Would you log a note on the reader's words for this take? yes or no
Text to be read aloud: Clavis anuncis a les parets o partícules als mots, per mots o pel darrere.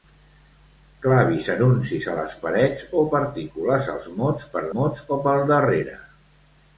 no